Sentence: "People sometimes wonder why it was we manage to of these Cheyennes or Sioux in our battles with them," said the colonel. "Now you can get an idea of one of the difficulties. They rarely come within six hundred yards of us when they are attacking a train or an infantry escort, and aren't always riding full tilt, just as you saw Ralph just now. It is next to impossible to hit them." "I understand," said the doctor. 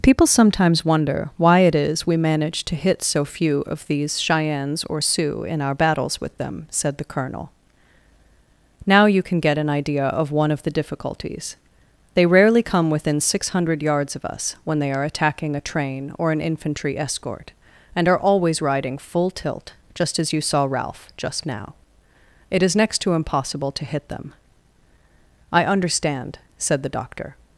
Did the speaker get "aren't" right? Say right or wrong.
wrong